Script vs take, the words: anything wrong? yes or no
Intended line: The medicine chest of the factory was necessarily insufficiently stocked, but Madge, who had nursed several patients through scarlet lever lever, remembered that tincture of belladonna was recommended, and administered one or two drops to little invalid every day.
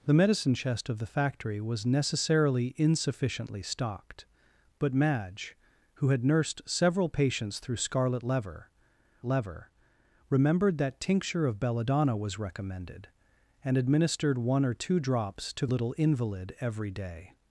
no